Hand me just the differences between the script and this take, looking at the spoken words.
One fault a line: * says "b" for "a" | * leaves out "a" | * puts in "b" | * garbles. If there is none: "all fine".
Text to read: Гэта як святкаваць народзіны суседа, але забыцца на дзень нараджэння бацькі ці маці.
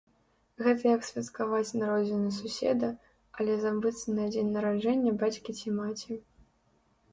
all fine